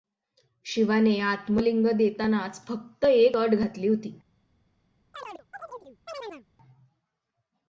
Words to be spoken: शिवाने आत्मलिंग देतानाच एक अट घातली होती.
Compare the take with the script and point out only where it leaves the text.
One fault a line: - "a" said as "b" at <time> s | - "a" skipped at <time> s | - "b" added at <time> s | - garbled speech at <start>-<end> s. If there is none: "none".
- "फक्त" added at 2.7 s